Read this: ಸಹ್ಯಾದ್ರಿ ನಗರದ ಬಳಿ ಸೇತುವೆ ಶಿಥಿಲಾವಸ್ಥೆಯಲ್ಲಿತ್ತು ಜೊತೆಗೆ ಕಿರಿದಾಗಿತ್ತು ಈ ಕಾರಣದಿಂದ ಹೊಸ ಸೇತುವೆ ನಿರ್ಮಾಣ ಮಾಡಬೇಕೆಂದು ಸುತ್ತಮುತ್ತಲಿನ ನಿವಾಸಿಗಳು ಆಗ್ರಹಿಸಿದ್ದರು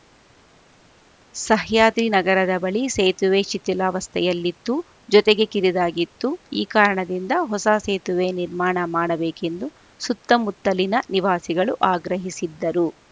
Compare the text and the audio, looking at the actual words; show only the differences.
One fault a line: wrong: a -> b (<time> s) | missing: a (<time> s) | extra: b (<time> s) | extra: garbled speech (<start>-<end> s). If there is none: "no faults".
no faults